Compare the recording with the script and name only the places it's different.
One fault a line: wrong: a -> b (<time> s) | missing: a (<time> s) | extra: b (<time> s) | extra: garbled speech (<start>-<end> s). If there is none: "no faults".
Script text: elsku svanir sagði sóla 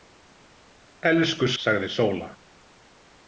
missing: svanir (1.5 s)